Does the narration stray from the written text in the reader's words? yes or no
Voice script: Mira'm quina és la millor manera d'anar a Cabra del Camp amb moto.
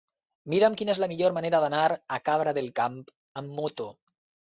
no